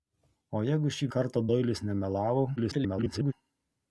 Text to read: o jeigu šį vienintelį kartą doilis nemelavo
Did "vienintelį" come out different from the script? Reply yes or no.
yes